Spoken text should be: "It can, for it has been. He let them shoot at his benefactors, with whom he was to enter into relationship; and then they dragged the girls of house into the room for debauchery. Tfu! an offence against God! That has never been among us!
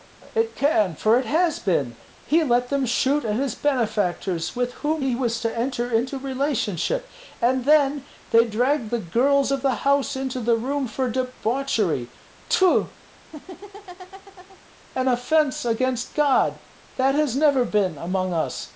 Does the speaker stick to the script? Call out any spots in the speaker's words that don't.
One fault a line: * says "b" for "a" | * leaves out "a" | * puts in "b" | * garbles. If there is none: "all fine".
* puts in "the"